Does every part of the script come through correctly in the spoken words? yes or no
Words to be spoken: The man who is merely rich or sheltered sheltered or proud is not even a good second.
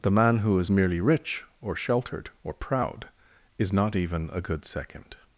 no